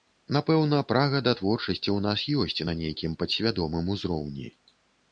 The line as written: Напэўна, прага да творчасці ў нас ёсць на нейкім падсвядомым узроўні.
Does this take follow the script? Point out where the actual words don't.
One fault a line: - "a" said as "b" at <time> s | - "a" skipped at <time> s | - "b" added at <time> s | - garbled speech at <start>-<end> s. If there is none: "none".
none